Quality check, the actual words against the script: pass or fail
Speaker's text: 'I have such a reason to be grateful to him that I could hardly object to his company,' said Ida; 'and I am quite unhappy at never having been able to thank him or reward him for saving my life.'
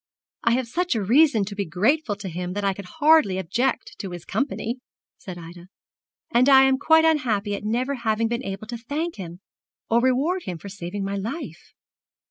pass